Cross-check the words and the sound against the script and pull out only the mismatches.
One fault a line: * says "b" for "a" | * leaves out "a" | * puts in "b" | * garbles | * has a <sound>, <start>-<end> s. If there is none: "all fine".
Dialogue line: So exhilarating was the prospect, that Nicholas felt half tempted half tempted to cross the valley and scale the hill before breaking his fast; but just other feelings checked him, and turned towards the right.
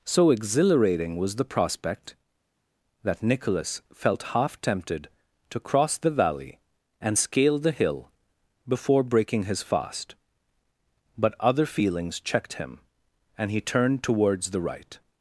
* leaves out "half tempted"
* leaves out "just"
* puts in "he"